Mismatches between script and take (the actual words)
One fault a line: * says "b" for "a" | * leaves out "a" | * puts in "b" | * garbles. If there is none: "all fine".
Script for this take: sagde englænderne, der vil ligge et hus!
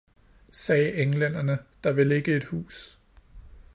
all fine